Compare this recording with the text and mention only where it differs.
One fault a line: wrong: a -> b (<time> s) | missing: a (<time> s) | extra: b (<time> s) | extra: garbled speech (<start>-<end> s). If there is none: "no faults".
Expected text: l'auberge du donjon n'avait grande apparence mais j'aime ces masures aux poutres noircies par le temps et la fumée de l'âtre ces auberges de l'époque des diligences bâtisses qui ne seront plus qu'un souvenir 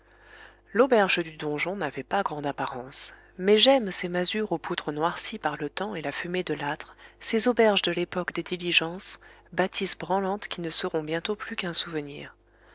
extra: pas (2.0 s)
extra: branlantes (9.9 s)
extra: bientôt (11.0 s)